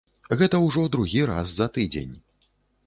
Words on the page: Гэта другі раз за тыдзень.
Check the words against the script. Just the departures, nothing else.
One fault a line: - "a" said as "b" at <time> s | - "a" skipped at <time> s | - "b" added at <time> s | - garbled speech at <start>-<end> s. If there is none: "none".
- "ўжо" added at 0.6 s